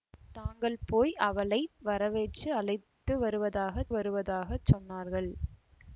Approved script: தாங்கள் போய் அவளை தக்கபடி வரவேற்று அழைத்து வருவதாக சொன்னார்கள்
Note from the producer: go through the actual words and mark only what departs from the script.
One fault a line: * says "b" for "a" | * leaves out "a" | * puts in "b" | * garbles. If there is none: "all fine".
* leaves out "தக்கபடி"
* puts in "வருவதாக"